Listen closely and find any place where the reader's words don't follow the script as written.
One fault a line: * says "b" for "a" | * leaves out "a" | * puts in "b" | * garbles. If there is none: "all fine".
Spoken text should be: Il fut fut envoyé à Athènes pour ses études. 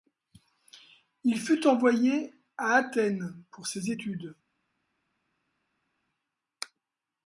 * leaves out "fut"